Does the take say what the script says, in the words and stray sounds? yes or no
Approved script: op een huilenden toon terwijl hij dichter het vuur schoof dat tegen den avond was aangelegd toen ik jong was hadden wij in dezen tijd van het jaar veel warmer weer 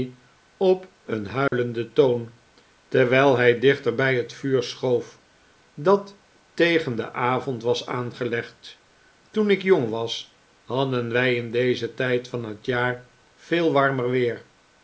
no